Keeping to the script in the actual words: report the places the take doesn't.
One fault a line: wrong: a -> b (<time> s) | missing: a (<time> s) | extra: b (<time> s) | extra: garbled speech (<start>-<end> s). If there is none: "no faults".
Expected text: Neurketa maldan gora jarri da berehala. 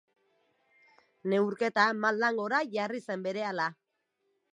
wrong: da -> zen (3.1 s)